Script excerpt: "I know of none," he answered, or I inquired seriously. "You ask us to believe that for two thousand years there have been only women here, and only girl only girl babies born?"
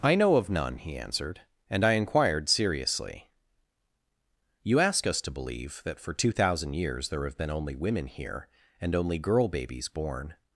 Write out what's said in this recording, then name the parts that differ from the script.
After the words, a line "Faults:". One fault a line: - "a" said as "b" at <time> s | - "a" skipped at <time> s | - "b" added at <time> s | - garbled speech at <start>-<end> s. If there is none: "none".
"I know of none," he answered, and I inquired seriously. "You ask us to believe that for two thousand years there have been only women here, and only girl babies born?"
Faults:
- "or" said as "and" at 1.7 s
- "only girl" skipped at 9.5 s